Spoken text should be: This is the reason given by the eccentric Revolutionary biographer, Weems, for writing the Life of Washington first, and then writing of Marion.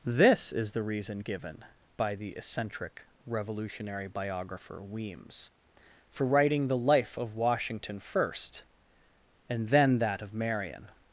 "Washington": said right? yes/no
yes